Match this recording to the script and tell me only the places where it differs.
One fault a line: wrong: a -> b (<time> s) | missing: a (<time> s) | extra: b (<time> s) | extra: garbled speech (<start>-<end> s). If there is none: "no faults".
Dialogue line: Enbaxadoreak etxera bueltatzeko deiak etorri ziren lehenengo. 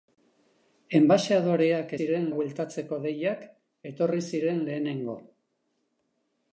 wrong: etxera -> ziren (2.0 s)